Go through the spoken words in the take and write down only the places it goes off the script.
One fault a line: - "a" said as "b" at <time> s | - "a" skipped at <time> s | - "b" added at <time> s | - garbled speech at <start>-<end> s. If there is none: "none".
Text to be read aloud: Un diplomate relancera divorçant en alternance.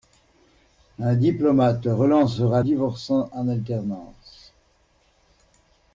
none